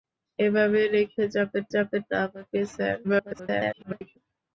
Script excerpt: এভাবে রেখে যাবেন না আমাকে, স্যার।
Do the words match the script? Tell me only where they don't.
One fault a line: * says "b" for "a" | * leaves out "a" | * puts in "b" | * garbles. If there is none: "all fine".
* puts in "যাবেন"
* garbles